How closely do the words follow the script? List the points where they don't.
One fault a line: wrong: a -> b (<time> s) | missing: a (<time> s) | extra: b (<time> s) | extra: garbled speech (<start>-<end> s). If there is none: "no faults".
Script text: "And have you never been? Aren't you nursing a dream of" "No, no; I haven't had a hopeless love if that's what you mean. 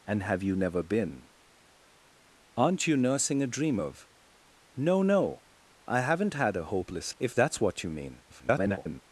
missing: love (7.2 s)
extra: garbled speech (8.3-9.0 s)